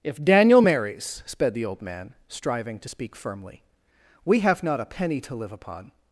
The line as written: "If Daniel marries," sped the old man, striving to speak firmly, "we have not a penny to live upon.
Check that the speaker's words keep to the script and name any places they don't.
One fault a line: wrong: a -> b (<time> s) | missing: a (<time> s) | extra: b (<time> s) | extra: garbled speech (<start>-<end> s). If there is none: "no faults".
no faults